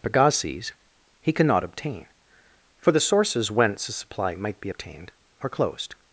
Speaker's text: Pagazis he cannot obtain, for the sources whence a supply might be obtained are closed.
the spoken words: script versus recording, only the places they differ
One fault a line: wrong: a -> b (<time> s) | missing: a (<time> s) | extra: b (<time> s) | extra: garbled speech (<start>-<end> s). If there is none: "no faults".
no faults